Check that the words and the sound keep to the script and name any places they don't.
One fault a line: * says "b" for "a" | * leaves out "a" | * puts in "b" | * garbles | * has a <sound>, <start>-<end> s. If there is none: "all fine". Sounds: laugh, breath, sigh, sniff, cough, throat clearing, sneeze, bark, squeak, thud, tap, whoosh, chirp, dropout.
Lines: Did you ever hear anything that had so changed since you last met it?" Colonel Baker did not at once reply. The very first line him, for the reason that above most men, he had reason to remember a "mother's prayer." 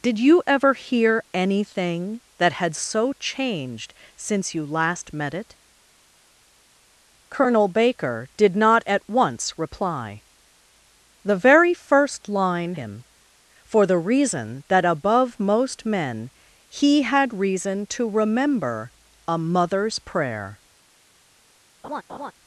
* has a laugh, 21.8-22.3 s